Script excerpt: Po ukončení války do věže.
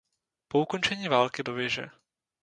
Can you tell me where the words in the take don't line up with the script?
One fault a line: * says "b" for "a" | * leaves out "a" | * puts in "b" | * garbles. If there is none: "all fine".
all fine